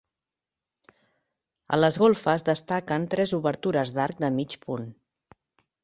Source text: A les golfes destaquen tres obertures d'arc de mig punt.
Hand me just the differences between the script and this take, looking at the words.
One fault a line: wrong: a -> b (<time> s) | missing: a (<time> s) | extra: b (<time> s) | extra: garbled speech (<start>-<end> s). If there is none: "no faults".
no faults